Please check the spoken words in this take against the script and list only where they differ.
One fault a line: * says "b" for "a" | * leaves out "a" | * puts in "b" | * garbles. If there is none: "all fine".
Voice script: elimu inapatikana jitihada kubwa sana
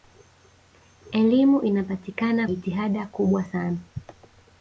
all fine